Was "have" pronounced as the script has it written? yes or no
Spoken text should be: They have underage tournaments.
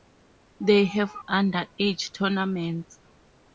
yes